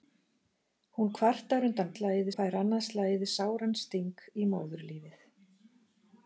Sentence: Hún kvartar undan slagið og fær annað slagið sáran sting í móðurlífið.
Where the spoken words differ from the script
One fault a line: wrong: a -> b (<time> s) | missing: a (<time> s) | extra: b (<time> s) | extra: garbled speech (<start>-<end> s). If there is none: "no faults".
no faults